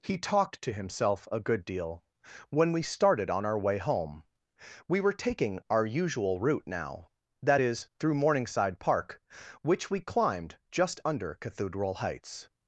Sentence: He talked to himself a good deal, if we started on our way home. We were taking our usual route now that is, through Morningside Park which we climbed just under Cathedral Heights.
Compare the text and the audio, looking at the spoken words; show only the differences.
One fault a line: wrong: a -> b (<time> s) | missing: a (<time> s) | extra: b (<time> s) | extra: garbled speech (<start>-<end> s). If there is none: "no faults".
wrong: if -> when (2.5 s)